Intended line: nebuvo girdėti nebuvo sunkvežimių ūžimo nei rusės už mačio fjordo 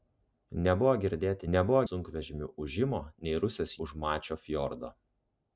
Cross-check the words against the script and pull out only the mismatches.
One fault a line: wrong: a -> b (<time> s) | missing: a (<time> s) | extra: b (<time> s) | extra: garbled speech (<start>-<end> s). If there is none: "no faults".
no faults